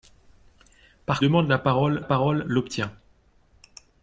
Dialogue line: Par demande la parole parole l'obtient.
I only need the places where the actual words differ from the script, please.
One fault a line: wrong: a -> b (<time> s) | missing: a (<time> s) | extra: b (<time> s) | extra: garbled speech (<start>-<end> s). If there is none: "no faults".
no faults